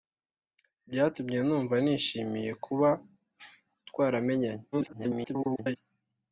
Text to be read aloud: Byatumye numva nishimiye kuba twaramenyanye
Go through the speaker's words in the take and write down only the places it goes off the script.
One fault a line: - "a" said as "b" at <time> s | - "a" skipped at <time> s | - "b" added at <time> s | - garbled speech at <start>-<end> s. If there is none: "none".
- garbled speech at 4.7-5.8 s